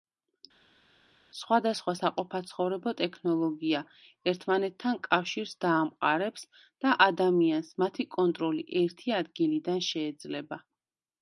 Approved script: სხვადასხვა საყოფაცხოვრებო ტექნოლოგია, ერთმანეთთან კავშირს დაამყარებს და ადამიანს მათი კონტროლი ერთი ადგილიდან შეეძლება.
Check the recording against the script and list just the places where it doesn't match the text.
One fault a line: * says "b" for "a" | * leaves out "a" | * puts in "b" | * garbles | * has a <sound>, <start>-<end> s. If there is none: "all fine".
all fine